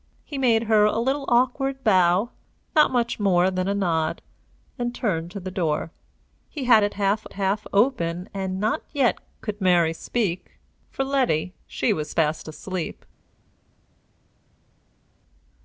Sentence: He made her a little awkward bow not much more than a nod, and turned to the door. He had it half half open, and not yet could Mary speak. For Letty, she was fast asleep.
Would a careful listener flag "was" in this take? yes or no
no